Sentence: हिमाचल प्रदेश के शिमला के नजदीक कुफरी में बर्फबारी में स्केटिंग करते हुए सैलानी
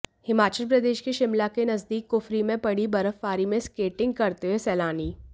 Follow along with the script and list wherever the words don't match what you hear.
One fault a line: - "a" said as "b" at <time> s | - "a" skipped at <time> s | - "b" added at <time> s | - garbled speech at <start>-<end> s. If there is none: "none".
- "पड़ी" added at 2.6 s